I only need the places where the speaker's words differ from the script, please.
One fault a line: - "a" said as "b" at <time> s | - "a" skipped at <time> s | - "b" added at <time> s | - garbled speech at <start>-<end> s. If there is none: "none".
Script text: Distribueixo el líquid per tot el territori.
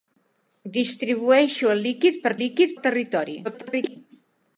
- "tot" said as "líquid" at 2.4 s
- garbled speech at 3.4-4.0 s